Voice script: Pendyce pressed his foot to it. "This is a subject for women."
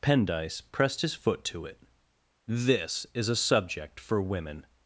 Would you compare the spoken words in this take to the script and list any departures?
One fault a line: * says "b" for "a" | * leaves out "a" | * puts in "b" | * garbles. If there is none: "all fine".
all fine